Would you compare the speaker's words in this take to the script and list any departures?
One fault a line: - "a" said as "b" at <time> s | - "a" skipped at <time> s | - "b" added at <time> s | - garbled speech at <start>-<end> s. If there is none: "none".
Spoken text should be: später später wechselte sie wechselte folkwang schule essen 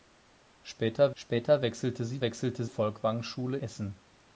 none